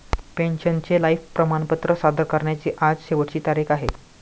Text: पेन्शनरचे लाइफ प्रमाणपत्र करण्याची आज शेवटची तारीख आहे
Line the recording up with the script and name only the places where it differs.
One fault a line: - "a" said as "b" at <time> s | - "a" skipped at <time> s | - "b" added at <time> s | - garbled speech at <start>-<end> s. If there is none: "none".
- "सादर" added at 2.0 s